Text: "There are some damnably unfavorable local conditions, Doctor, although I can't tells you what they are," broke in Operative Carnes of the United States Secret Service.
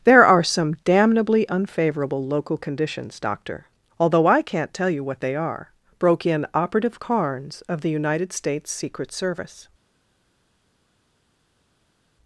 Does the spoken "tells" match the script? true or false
false